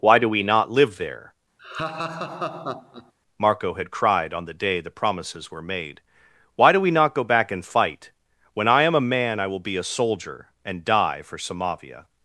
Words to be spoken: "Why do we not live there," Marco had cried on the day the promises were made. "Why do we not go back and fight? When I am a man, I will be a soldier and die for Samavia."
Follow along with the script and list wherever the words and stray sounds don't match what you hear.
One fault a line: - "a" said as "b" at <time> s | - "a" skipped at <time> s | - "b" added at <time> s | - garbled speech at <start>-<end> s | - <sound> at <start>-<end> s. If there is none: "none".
- laugh at 1.6-3.1 s